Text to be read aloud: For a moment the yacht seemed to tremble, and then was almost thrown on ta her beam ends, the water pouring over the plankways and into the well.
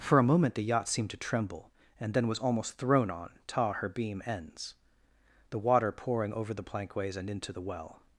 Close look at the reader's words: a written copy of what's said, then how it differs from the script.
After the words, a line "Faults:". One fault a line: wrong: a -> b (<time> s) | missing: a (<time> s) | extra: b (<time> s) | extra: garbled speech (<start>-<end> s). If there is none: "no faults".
For a moment the yacht seemed to tremble, and then was almost thrown on ta her beam ends, the water pouring over the plankways and into the well.
Faults:
no faults